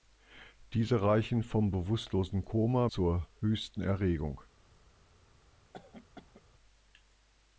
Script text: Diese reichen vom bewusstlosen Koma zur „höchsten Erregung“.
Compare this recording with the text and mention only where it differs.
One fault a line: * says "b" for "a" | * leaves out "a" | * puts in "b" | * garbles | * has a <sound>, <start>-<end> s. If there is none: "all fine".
* has a cough, 5.7-6.4 s